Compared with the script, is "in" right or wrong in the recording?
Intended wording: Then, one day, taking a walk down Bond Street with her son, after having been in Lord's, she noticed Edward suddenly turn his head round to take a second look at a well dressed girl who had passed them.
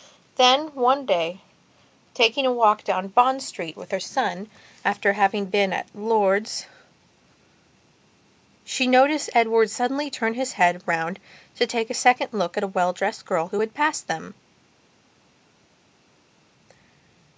wrong